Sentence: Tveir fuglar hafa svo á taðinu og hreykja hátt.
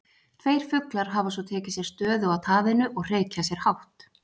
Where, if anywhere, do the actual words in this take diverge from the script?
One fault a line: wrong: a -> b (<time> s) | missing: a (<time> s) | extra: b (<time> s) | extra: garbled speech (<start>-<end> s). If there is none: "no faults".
extra: tekið sér stöðu (1.5 s)
extra: sér (3.5 s)